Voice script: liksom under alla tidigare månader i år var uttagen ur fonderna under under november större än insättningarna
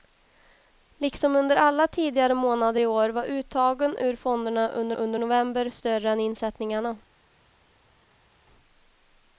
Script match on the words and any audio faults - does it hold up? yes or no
yes